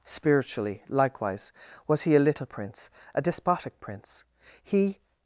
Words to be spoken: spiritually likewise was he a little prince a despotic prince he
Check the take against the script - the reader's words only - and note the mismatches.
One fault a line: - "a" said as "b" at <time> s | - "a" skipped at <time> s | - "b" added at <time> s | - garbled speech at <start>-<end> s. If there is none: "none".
none